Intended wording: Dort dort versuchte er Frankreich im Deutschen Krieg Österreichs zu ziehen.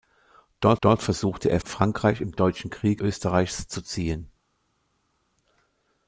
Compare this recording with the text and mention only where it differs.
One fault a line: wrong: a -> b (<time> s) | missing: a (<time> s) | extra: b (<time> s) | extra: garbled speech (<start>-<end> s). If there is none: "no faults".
no faults